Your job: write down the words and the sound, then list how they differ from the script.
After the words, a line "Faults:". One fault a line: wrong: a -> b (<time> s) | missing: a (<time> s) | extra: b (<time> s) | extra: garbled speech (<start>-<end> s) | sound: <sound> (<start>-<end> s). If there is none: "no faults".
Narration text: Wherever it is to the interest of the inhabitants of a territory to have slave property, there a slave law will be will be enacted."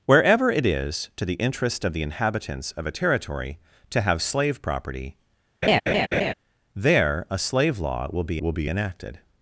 Wherever it is to the interest of the inhabitants of a territory to have slave property, there a slave law will be will be enacted."
Faults:
sound: laugh (5.6-6.3 s)